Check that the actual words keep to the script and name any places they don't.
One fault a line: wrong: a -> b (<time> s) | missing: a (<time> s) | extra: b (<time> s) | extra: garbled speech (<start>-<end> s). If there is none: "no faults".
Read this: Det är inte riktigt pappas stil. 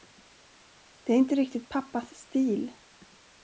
no faults